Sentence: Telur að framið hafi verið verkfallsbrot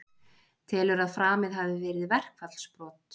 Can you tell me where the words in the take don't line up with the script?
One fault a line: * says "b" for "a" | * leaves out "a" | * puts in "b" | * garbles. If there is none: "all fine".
all fine